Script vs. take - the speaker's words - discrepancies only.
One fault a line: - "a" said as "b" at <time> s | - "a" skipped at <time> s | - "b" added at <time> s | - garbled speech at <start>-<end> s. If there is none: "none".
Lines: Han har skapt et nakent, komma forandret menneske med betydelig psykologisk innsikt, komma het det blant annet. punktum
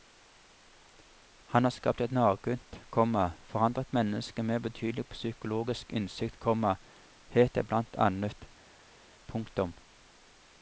none